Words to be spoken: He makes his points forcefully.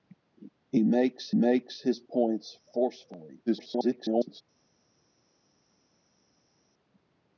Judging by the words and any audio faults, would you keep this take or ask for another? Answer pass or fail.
fail